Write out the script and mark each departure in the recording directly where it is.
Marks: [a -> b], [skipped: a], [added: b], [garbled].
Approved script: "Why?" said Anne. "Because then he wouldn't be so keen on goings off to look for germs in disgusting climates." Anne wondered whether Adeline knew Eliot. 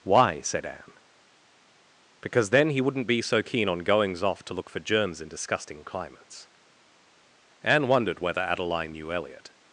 "Why?" said Anne. "Because then he wouldn't be so keen on goings off to look for germs in disgusting climates." Anne wondered whether Adeline knew Eliot.